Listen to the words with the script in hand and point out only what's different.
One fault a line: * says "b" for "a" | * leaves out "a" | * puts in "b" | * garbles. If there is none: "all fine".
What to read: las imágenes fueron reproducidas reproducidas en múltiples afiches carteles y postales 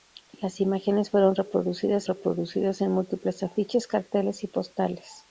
all fine